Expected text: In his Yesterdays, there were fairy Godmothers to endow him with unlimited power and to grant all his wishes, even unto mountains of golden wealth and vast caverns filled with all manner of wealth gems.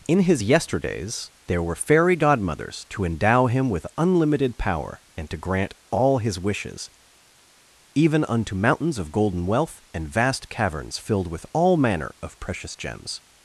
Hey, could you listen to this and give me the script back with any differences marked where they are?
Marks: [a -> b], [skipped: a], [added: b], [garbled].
In his Yesterdays, there were fairy Godmothers to endow him with unlimited power and to grant all his wishes, even unto mountains of golden wealth and vast caverns filled with all manner of [wealth -> precious] gems.